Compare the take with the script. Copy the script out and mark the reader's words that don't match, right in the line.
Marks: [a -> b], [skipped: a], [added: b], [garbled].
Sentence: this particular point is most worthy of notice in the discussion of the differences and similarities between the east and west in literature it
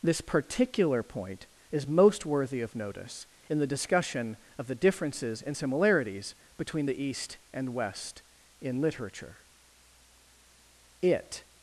this particular point is most worthy of notice in the discussion of the differences and similarities between the east and west in literature it